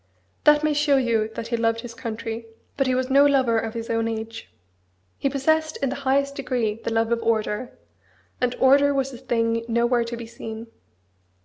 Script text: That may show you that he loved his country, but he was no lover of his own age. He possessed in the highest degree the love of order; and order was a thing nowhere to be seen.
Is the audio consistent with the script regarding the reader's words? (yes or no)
yes